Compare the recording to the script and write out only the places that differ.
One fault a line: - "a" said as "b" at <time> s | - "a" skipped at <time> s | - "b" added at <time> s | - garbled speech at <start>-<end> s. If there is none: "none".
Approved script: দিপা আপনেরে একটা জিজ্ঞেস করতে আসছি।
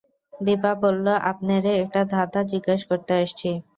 - "বলল" added at 0.8 s
- "ধাঁধা" added at 2.1 s